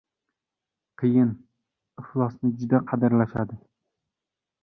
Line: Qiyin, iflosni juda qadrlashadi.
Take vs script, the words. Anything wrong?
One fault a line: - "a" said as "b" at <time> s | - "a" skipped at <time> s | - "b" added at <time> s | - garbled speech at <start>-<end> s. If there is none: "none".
none